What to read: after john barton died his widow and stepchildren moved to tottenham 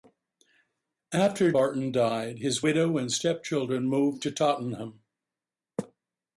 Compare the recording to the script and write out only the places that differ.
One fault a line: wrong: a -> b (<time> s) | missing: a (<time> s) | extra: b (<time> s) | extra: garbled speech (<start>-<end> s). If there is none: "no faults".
missing: john (1.5 s)